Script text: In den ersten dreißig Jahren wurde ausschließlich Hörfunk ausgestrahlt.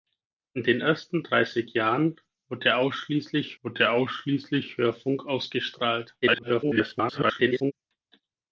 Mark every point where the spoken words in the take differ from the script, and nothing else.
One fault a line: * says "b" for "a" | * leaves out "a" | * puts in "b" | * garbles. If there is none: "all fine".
* puts in "wurde ausschließlich"
* garbles